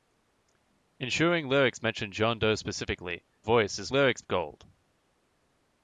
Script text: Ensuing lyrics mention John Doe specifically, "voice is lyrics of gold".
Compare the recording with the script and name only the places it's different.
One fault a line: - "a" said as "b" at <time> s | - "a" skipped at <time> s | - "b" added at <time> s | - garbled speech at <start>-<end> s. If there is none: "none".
none